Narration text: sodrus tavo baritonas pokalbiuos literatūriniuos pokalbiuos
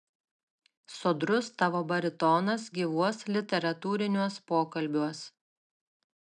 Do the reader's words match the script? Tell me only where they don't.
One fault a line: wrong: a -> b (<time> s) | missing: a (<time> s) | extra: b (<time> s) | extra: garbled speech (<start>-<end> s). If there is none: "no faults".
wrong: pokalbiuos -> gyvuos (2.8 s)